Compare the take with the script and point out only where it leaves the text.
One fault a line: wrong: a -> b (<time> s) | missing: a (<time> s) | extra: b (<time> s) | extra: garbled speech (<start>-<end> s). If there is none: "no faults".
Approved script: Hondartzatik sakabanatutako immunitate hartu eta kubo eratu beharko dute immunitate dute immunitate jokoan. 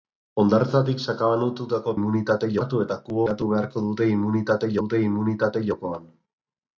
no faults